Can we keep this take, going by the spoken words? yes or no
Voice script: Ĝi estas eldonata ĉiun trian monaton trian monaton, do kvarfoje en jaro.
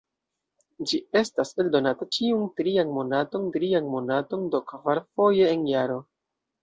yes